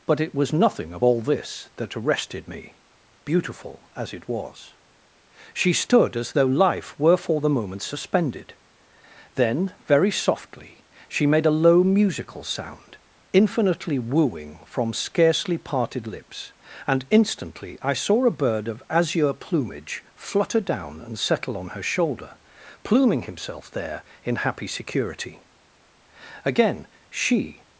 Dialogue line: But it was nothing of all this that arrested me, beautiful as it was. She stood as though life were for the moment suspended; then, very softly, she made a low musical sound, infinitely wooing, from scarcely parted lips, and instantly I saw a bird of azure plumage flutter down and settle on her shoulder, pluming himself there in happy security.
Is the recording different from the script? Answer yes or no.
yes